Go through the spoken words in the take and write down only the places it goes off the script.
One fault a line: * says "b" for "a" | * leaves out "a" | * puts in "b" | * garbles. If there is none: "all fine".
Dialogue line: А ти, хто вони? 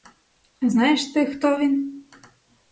* puts in "знаєш"
* says "він" for "вони"